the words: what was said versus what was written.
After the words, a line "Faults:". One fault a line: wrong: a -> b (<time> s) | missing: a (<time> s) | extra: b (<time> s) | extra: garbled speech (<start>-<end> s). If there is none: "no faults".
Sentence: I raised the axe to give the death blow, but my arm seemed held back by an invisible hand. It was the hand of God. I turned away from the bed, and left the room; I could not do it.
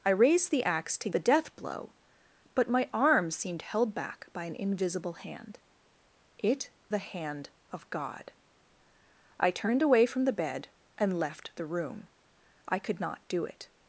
I raised the axe to the death blow, but my arm seemed held back by an invisible hand. It the hand of God. I turned away from the bed, and left the room; I could not do it.
Faults:
missing: give (1.1 s)
missing: was (6.7 s)